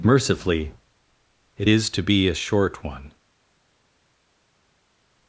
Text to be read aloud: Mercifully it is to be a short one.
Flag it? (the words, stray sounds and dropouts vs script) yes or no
no